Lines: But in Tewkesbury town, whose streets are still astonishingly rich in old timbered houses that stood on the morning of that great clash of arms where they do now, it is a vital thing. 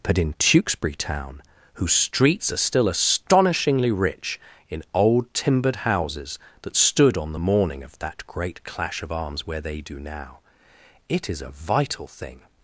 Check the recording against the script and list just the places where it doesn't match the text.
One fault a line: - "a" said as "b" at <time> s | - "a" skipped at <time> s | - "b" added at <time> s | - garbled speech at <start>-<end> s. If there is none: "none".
none